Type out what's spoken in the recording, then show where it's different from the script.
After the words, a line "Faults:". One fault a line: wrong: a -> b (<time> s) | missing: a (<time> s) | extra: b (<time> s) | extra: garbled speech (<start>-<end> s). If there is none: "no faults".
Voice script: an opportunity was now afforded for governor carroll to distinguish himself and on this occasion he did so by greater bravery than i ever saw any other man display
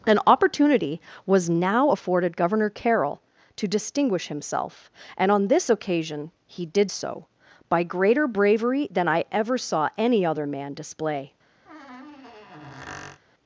an opportunity was now afforded governor carroll to distinguish himself and on this occasion he did so by greater bravery than i ever saw any other man display
Faults:
missing: for (2.4 s)